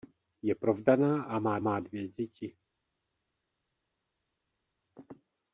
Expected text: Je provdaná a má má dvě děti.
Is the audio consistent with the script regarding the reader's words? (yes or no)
yes